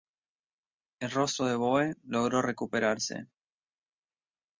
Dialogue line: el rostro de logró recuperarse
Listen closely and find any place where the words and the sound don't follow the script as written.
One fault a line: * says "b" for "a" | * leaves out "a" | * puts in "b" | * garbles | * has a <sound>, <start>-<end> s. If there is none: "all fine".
* puts in "boe"